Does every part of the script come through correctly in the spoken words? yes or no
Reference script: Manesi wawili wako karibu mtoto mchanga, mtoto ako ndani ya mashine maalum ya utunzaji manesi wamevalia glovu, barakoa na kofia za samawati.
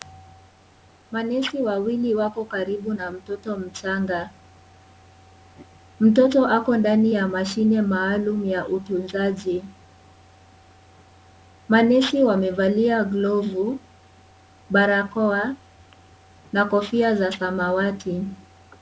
no